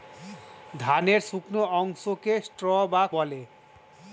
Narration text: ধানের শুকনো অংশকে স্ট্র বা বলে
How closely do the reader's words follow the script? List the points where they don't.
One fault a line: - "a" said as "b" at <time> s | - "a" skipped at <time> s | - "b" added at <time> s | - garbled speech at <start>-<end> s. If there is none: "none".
none